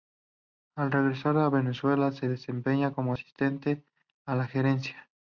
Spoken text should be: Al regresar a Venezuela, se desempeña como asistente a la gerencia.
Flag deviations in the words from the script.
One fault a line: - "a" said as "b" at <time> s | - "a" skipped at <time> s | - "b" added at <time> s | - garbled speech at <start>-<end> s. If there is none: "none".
none